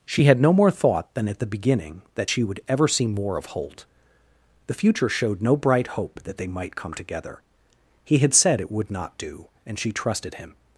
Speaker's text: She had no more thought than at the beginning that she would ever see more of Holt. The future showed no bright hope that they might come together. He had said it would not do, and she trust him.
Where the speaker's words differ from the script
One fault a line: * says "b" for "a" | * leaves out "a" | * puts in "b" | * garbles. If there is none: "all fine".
* says "trusted" for "trust"